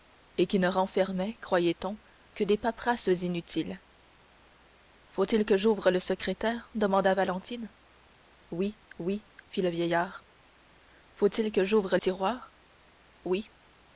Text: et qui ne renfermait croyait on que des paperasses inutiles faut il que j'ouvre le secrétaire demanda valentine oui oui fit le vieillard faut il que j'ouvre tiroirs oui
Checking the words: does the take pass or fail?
pass